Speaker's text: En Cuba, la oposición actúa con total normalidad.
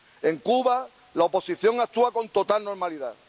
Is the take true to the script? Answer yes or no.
yes